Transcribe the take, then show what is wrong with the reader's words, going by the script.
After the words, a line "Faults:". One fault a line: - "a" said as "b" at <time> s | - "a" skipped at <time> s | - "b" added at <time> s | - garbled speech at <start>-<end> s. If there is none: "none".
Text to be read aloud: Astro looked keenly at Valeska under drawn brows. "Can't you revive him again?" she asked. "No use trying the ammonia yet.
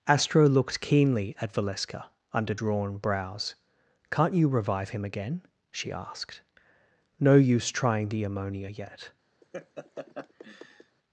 Astro looked keenly at Valeska under drawn brows. "Can't you revive him again?" she asked. "No use trying the ammonia yet.
Faults:
none